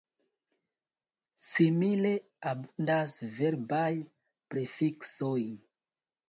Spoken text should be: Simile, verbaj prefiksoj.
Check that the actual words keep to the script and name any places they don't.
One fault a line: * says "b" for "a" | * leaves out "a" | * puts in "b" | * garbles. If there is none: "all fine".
* puts in "abundas"